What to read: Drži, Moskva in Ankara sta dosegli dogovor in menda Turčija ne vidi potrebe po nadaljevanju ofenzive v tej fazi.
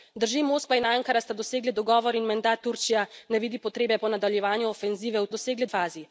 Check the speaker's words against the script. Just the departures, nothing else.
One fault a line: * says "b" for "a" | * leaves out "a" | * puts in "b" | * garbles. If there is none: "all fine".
* says "dosegli" for "tej"